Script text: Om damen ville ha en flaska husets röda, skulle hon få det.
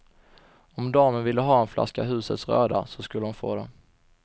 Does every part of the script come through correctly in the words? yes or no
no